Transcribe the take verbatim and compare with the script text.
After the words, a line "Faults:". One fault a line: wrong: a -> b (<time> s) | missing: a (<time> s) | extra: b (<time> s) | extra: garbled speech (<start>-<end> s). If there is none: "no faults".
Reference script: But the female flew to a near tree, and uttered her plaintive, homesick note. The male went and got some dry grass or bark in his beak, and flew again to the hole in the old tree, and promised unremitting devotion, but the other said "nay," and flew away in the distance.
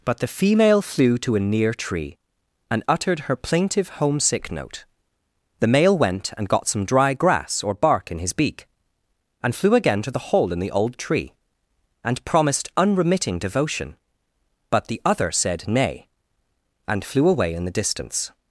But the female flew to a near tree, and uttered her plaintive, homesick note. The male went and got some dry grass or bark in his beak, and flew again to the hole in the old tree, and promised unremitting devotion, but the other said "nay," and flew away in the distance.
Faults:
no faults